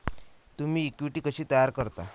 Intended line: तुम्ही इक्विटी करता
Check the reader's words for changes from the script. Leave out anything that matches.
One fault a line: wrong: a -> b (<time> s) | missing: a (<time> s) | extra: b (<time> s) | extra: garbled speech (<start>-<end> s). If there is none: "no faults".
extra: कशी तयार (1.2 s)